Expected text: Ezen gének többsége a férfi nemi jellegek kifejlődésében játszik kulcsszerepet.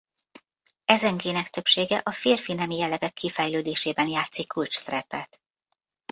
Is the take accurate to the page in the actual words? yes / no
yes